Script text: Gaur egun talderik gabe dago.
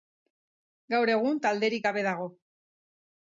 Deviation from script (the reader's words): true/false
false